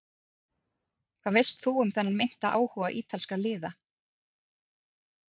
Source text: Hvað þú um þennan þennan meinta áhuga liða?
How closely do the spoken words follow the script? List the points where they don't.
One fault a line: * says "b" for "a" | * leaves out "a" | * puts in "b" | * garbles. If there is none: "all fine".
* puts in "veist"
* leaves out "þennan"
* puts in "ítalskra"